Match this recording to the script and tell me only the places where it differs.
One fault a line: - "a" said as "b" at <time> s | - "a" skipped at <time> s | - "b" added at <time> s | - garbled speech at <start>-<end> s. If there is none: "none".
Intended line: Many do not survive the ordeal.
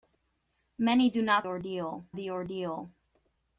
- "survive" said as "ordeal" at 1.4 s